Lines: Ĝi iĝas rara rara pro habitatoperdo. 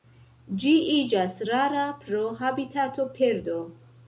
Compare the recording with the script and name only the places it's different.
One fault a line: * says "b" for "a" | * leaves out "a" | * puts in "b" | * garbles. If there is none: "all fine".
* leaves out "rara"